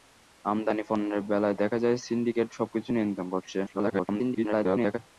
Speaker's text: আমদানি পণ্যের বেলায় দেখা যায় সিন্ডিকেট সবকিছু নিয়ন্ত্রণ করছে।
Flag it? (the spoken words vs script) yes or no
yes